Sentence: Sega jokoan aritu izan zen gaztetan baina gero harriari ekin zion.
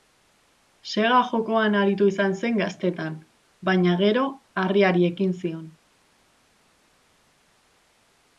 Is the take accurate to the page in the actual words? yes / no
yes